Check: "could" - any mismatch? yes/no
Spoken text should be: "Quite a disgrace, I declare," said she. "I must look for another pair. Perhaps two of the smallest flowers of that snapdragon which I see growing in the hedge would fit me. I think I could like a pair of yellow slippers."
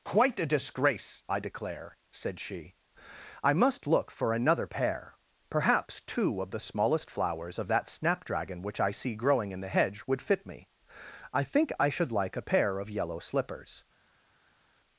yes